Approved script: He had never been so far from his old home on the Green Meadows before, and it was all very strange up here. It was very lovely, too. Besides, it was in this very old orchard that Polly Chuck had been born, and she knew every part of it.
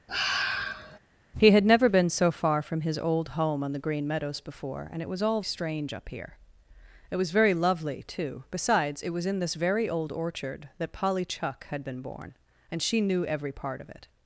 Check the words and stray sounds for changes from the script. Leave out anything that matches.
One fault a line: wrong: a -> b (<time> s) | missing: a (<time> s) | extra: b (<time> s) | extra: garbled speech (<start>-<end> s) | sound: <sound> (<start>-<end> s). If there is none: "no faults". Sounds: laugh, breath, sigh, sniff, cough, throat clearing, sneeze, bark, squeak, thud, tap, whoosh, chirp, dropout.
sound: sigh (0.1-1.0 s)
missing: very (5.4 s)